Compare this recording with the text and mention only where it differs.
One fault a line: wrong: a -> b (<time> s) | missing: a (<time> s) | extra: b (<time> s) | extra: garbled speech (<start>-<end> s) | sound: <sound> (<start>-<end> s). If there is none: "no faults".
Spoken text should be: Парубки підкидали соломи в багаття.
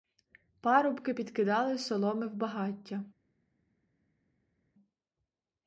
no faults